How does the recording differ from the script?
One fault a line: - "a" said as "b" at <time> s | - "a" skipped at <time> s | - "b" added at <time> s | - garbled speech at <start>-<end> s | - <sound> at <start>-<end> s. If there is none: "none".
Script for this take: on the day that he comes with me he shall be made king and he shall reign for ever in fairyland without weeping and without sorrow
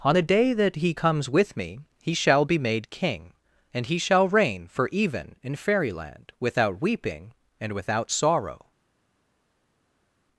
- "ever" said as "even" at 4.9 s